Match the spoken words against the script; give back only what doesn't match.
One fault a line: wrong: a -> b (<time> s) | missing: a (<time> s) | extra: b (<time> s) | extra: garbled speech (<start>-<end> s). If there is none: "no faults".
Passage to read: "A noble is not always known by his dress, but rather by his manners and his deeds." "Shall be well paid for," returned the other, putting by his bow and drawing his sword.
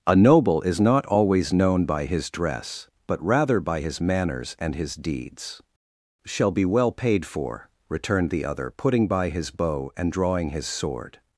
no faults